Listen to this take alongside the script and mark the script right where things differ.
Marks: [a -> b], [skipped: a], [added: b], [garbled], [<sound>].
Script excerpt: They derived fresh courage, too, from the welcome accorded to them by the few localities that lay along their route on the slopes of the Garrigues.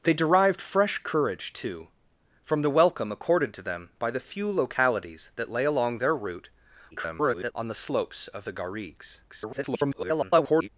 They derived fresh courage, too, from the welcome accorded to them by the few localities that lay along their route [garbled] on the slopes of the Garrigues. [garbled]